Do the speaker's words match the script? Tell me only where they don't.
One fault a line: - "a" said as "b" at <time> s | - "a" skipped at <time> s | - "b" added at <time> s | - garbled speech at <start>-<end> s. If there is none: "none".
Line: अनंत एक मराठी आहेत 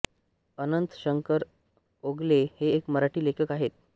- "शंकर ओगले हे" added at 0.9 s
- "लेखक" added at 3.2 s